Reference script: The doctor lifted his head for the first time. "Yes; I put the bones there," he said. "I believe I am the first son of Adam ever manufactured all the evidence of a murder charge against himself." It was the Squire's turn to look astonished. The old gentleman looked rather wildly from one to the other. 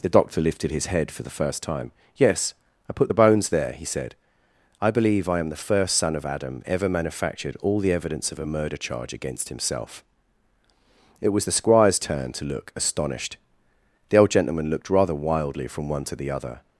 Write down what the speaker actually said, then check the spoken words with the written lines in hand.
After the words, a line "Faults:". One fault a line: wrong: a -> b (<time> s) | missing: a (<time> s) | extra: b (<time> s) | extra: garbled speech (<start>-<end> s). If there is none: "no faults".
The doctor lifted his head for the first time. "Yes; I put the bones there," he said. "I believe I am the first son of Adam ever manufactured all the evidence of a murder charge against himself." It was the Squire's turn to look astonished. The old gentleman looked rather wildly from one to the other.
Faults:
no faults